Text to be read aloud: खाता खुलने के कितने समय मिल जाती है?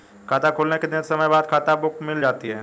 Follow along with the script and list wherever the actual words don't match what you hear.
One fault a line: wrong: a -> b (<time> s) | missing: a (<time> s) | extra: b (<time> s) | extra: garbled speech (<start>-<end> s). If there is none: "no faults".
extra: बाद खाता बुक (1.3 s)